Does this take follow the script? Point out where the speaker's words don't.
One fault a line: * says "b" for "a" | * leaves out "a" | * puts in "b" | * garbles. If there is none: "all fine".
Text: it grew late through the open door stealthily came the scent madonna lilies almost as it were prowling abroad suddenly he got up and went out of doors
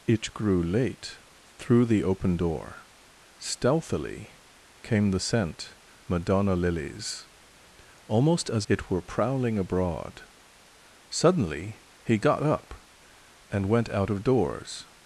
all fine